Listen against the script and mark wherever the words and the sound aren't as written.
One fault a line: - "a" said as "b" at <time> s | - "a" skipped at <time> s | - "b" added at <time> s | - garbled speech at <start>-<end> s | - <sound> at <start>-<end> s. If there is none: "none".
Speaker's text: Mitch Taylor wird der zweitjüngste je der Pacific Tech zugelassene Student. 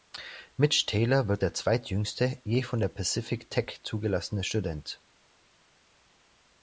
- "von" added at 2.6 s